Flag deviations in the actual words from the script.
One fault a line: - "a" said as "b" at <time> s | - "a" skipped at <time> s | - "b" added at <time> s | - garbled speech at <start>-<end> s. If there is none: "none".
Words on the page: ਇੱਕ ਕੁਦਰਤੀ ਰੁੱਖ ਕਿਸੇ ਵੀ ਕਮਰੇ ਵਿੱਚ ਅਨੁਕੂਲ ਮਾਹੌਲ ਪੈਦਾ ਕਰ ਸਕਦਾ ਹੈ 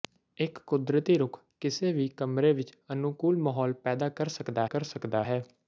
- "ਕਰ ਸਕਦਾ" added at 4.6 s